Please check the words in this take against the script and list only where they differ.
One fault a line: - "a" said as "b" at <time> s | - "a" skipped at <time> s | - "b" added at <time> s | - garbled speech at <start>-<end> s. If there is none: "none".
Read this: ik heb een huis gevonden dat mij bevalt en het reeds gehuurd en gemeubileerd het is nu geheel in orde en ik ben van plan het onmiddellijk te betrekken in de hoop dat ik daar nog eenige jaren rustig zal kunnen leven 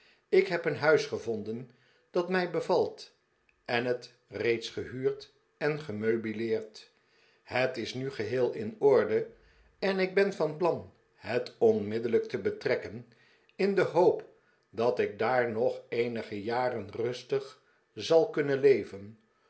none